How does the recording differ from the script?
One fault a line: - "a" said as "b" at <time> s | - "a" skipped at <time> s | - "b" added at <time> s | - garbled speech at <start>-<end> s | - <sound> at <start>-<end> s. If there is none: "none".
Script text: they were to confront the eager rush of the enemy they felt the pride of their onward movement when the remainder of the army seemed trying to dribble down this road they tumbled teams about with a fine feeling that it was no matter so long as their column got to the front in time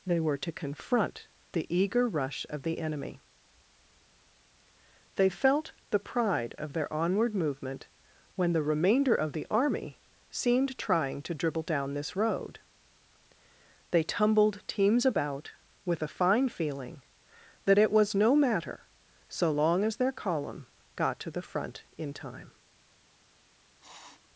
- sniff at 23.8-24.3 s